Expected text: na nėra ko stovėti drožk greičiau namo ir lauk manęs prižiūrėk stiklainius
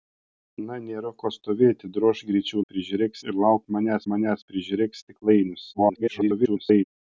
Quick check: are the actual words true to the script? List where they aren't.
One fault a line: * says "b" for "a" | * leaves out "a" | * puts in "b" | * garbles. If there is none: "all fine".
* says "prižiūrėk" for "namo"
* puts in "manęs"
* garbles